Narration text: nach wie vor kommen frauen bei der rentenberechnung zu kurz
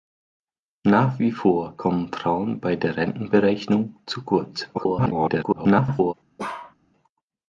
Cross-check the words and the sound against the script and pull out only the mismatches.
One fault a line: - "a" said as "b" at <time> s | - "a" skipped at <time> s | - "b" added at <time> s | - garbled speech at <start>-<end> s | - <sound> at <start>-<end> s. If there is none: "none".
- garbled speech at 4.7-6.1 s
- bark at 6.4-6.8 s